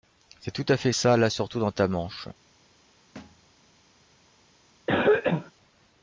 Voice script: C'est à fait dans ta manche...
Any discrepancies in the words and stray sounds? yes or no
yes